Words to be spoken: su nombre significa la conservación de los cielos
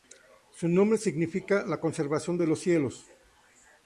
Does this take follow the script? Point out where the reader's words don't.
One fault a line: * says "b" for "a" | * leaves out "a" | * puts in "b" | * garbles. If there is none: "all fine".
all fine